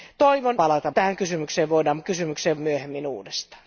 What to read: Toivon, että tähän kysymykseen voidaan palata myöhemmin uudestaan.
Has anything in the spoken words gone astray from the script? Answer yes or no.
yes